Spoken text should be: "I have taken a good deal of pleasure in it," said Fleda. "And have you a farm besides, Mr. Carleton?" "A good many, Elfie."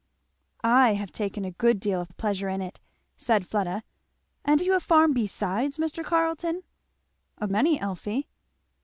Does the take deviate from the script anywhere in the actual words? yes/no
yes